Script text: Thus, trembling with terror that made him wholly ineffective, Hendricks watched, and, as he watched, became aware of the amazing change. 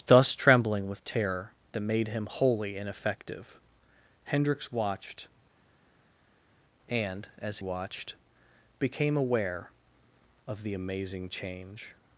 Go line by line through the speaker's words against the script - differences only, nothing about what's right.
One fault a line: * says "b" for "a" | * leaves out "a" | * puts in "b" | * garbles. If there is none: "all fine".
* leaves out "he"